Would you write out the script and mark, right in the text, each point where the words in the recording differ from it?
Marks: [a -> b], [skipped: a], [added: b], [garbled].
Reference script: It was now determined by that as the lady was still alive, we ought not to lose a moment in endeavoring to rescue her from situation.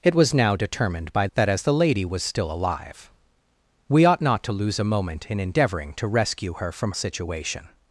It was now determined by that as the lady was still alive, we ought not to lose a moment in endeavoring to rescue her from situation.